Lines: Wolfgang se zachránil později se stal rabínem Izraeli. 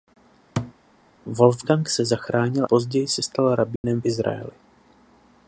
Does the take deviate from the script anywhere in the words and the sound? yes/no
yes